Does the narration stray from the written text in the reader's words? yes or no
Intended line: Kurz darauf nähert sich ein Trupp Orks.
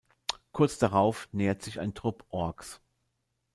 no